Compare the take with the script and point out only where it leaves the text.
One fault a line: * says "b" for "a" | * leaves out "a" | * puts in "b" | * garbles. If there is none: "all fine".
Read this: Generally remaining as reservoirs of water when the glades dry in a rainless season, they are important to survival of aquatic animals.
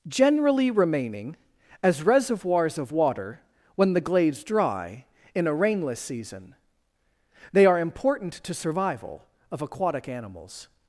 all fine